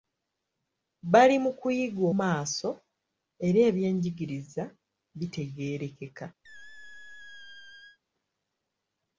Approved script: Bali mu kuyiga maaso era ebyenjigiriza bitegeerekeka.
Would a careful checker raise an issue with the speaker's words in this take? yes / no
no